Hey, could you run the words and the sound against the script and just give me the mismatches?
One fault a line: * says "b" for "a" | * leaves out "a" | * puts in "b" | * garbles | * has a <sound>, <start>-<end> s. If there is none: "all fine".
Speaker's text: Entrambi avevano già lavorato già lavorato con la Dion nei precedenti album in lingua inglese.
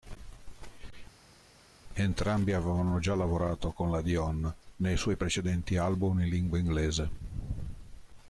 * leaves out "già lavorato"
* puts in "suoi"